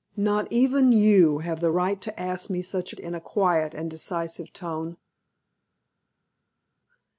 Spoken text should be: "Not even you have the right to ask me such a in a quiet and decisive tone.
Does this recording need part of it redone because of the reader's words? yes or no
no